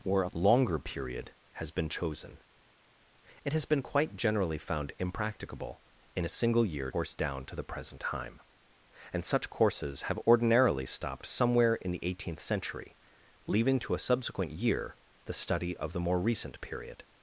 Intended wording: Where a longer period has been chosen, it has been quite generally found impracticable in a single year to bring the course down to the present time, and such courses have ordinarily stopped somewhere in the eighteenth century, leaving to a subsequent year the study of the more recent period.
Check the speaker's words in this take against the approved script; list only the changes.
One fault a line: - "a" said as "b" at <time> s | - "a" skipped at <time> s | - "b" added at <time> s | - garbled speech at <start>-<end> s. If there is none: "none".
- "to bring the" skipped at 6.9 s